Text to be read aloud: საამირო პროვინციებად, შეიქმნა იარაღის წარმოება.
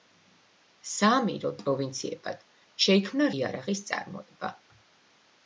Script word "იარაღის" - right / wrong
right